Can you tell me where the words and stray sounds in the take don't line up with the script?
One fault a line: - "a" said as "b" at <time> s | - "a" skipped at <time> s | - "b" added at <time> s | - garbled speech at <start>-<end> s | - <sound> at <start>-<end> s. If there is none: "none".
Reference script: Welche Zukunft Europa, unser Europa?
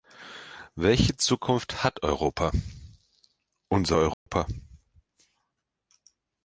- "hat" added at 1.8 s
- dropout at 4.1-4.3 s